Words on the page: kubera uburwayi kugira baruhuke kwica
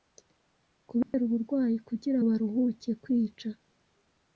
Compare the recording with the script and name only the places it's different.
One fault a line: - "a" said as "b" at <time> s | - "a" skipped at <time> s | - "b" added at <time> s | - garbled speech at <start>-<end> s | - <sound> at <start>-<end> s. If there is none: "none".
- dropout at 1.0-1.1 s